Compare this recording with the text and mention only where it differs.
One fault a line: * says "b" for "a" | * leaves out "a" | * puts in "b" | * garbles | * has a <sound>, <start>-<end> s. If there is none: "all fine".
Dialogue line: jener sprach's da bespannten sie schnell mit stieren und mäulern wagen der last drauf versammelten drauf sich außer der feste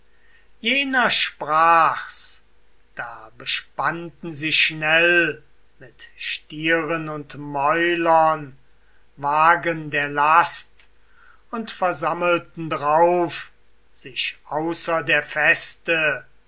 * says "und" for "drauf"